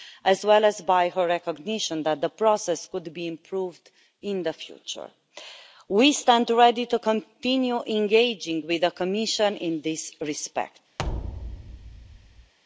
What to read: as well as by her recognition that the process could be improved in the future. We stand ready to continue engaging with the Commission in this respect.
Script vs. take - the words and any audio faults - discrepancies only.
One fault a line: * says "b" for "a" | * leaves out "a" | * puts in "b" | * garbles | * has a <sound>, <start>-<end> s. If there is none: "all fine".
* has a thud, 11.0-12.5 s